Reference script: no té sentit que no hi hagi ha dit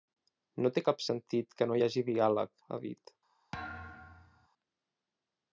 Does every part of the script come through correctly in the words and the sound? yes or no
no